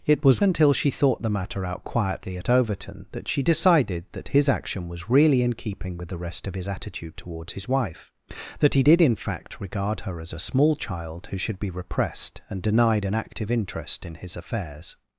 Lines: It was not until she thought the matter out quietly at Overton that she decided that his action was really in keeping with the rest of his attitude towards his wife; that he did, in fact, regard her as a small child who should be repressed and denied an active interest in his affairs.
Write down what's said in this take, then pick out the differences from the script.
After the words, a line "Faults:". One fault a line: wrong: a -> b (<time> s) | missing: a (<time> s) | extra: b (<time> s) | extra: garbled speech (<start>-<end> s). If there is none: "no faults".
It was until she thought the matter out quietly at Overton that she decided that his action was really in keeping with the rest of his attitude towards his wife; that he did, in fact, regard her as a small child who should be repressed and denied an active interest in his affairs.
Faults:
missing: not (0.4 s)